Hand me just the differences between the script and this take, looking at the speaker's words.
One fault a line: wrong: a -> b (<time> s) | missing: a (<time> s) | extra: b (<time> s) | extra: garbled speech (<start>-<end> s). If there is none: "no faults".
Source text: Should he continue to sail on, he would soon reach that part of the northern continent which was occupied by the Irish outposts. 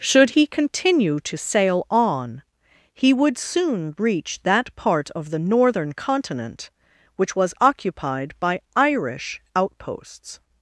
missing: the (8.6 s)